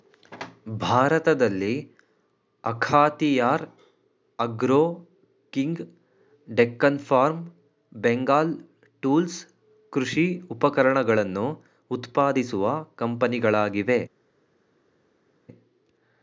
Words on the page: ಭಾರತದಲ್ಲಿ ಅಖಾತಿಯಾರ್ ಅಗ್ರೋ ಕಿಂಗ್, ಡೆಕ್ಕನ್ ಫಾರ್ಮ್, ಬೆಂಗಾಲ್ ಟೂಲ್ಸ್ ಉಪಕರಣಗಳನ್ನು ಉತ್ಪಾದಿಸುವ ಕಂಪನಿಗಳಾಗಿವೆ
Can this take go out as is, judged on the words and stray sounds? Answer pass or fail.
fail